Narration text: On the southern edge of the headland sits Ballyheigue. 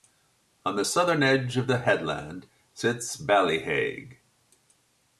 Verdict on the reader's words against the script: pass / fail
pass